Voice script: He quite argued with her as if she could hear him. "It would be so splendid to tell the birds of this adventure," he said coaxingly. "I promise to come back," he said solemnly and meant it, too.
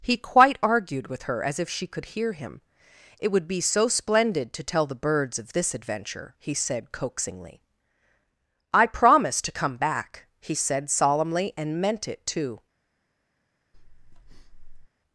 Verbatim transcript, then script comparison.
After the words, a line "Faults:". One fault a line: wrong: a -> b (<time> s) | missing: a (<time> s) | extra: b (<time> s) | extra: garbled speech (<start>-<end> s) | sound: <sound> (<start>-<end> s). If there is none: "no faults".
He quite argued with her as if she could hear him. "It would be so splendid to tell the birds of this adventure," he said coaxingly. "I promise to come back," he said solemnly and meant it, too.
Faults:
sound: breath (13.7-14.9 s)